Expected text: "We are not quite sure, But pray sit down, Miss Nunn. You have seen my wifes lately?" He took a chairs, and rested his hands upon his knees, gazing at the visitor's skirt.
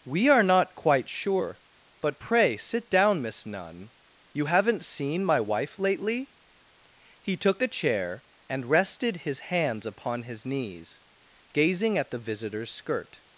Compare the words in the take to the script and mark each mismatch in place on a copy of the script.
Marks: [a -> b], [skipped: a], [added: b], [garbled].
"We are not quite sure, But pray sit down, Miss Nunn. You [have -> haven't] seen my [wifes -> wife] lately?" He took a [chairs, -> chair] and rested his hands upon his knees, gazing at the visitor's skirt.